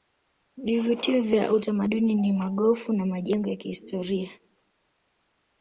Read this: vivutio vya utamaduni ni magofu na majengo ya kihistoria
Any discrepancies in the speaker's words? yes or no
no